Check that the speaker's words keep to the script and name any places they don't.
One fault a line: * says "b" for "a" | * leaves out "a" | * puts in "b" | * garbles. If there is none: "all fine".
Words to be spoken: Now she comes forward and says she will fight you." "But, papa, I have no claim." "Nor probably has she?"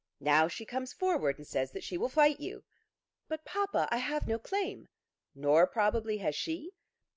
* puts in "that"